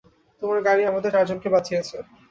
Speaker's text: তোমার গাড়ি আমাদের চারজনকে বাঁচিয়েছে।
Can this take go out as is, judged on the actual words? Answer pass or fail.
pass